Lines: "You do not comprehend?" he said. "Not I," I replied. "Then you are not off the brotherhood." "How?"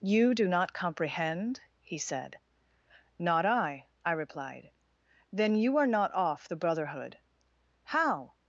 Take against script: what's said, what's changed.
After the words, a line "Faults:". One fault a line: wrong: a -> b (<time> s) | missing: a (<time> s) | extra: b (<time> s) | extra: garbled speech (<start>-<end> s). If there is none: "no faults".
"You do not comprehend?" he said. "Not I," I replied. "Then you are not off the brotherhood." "How?"
Faults:
no faults